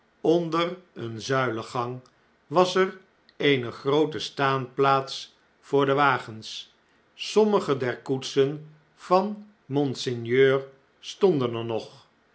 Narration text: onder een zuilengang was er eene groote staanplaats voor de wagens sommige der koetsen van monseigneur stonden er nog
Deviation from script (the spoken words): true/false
false